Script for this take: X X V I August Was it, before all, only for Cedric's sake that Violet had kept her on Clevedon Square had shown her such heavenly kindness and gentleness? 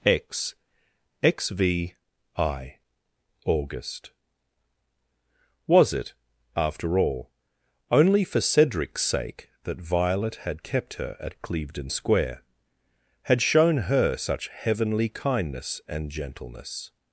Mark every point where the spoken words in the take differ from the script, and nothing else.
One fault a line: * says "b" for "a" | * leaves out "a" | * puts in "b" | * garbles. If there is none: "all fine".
* says "after" for "before"
* says "at" for "on"